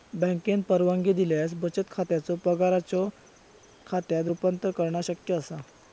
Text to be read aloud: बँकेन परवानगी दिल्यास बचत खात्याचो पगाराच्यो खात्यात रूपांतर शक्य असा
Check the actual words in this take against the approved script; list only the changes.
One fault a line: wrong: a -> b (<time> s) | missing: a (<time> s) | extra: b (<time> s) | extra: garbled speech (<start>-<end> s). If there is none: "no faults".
extra: करणा (4.8 s)